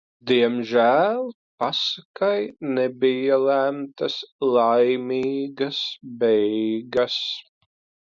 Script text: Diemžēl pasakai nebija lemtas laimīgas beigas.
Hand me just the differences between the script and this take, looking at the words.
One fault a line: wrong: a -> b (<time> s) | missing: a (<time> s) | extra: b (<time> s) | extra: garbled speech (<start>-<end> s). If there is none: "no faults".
no faults